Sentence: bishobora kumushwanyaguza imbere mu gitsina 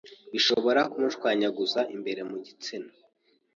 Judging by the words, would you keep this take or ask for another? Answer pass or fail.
pass